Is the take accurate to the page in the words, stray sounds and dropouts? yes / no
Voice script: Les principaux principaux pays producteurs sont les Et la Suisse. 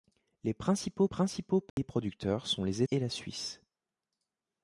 no